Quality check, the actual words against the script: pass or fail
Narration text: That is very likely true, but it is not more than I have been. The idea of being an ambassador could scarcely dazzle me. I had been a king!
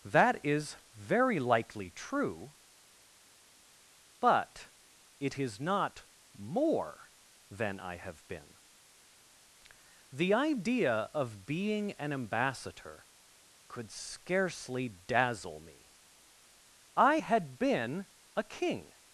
pass